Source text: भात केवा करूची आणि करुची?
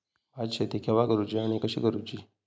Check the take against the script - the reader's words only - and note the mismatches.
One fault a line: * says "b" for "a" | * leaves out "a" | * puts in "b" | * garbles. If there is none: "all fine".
* puts in "शेती"
* puts in "कशी"